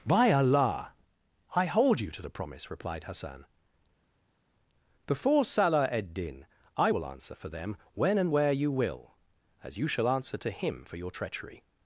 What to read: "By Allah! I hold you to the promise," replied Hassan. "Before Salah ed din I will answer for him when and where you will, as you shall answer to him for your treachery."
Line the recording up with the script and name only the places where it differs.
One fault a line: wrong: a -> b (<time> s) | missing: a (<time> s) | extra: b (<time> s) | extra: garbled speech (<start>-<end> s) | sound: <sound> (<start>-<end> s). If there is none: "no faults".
wrong: him -> them (7.5 s)